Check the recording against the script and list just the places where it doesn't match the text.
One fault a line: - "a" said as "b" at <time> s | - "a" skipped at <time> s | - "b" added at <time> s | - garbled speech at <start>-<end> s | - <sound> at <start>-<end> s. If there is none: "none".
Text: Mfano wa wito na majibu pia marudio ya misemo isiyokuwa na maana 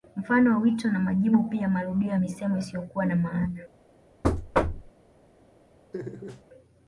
- thud at 4.2-4.9 s
- laugh at 5.9-6.4 s